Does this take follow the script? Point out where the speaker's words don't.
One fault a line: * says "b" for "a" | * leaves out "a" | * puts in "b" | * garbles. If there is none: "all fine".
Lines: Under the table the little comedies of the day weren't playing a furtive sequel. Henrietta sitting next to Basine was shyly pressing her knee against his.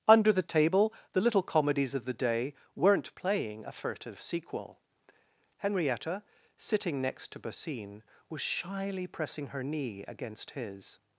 all fine